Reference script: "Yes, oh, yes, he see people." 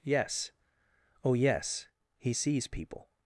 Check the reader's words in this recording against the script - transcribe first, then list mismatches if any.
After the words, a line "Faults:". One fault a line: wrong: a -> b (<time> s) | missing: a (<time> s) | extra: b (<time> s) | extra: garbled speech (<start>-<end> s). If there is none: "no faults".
"Yes, oh, yes, he sees people."
Faults:
wrong: see -> sees (2.3 s)